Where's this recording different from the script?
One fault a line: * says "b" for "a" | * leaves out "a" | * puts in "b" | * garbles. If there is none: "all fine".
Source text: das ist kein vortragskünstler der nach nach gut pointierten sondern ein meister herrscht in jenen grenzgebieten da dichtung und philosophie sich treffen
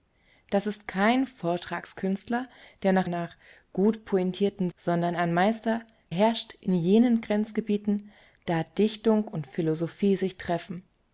all fine